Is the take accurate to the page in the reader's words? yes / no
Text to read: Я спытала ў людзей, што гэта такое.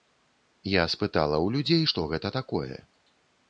yes